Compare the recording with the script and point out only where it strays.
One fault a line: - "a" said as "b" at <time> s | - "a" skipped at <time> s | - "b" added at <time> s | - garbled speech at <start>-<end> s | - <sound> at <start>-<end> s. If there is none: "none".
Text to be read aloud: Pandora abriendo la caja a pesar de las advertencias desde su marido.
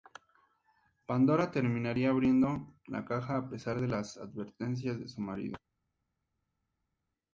- "terminaría" added at 1.5 s
- "desde" said as "de" at 5.0 s